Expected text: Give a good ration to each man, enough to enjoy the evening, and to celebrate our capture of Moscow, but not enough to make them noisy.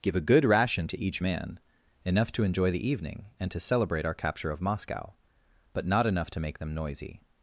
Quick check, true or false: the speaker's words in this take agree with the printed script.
true